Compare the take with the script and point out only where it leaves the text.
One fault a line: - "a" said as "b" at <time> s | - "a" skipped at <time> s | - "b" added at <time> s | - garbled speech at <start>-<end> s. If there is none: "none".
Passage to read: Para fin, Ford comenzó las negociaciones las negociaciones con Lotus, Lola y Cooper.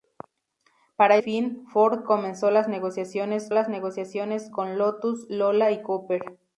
none